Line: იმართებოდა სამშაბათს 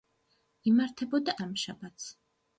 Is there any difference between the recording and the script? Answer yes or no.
no